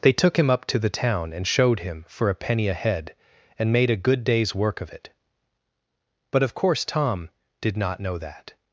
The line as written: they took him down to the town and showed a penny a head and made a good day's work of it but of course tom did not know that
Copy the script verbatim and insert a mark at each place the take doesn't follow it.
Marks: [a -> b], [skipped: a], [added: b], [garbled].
they took him [down -> up] to the town and showed [added: him for] a penny a head and made a good day's work of it but of course tom did not know that